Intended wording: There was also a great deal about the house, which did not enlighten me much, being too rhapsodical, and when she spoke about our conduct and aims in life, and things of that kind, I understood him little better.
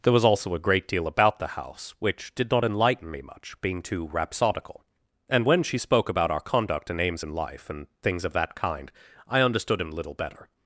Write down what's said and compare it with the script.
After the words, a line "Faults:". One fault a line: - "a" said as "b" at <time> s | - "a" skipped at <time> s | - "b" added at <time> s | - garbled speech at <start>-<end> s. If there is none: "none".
There was also a great deal about the house, which did not enlighten me much, being too rhapsodical, and when she spoke about our conduct and aims in life, and things of that kind, I understood him little better.
Faults:
none